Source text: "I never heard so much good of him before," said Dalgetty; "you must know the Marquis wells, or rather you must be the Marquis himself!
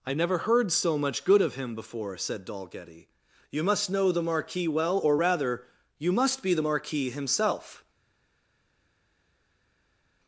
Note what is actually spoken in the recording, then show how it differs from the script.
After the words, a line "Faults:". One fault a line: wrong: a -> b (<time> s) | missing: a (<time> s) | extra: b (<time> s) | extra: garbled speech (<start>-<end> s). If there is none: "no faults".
"I never heard so much good of him before," said Dalgetty; "you must know the Marquis well, or rather you must be the Marquis himself!
Faults:
wrong: wells -> well (4.7 s)